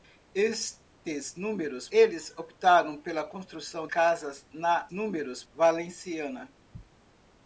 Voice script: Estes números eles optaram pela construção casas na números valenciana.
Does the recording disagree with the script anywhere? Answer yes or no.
no